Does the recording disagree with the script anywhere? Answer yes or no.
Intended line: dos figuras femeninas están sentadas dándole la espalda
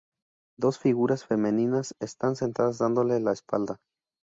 no